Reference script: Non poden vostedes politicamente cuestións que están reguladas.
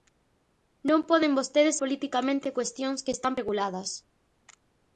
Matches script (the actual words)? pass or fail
pass